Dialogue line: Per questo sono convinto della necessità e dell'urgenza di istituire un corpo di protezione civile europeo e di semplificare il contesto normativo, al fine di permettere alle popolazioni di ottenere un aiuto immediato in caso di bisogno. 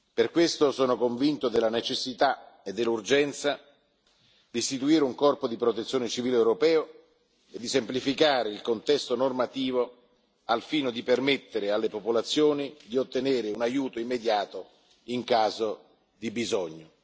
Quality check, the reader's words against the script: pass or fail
pass